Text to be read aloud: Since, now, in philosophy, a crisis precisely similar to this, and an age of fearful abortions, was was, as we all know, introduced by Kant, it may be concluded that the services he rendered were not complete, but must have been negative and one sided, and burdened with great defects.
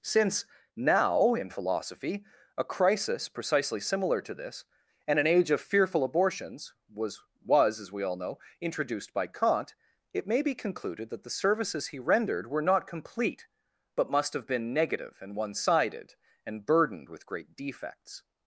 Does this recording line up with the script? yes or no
yes